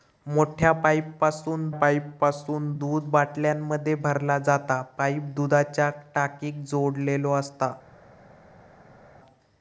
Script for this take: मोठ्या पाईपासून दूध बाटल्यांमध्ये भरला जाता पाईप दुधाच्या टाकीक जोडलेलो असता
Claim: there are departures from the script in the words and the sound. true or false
true